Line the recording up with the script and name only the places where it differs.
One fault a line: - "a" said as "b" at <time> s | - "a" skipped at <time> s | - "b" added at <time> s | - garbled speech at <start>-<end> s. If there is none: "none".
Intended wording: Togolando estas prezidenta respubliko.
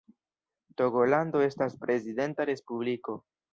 none